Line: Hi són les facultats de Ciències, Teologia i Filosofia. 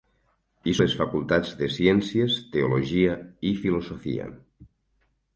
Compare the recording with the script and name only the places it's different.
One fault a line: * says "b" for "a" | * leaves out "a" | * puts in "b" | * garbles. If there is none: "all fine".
* leaves out "són"